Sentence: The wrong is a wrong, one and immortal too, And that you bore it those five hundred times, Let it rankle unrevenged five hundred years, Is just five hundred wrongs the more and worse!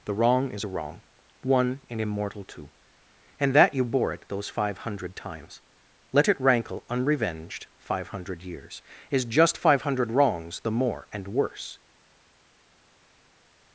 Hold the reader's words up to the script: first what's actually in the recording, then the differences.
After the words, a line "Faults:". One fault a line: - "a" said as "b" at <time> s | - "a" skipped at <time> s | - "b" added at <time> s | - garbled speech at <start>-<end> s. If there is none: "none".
The wrong is a wrong, one and immortal too, And that you bore it those five hundred times, Let it rankle unrevenged five hundred years, Is just five hundred wrongs the more and worse!
Faults:
none